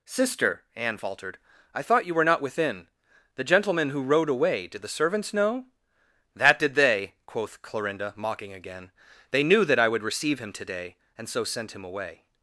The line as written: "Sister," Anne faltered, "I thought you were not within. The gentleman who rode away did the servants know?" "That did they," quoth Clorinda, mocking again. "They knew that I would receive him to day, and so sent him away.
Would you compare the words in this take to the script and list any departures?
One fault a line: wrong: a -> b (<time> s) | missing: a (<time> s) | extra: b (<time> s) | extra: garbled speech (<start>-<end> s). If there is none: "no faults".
no faults